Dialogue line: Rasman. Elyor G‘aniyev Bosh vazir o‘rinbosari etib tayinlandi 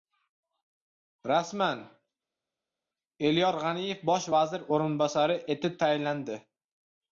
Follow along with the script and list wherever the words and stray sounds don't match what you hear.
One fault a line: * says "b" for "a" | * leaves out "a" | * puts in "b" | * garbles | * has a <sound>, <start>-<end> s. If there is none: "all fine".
all fine